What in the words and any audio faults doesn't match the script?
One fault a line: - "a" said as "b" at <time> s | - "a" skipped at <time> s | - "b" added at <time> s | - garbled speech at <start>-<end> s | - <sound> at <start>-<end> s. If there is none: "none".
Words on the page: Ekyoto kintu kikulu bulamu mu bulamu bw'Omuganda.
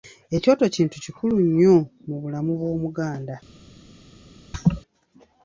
- "bulamu" said as "nnyo" at 1.5 s
- laugh at 4.5-4.8 s